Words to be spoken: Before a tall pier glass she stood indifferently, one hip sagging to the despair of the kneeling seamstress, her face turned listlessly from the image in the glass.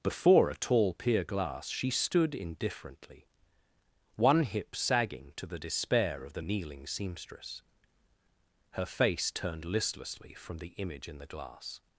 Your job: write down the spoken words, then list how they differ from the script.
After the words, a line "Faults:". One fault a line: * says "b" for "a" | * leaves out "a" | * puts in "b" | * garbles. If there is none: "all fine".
Before a tall pier glass she stood indifferently, one hip sagging to the despair of the kneeling seamstress, her face turned listlessly from the image in the glass.
Faults:
all fine